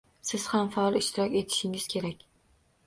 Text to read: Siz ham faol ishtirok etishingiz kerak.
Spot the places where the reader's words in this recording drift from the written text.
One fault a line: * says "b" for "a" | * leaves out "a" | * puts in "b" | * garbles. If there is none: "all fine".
all fine